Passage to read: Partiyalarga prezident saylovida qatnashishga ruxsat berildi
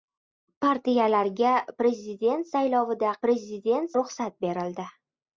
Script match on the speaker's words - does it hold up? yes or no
no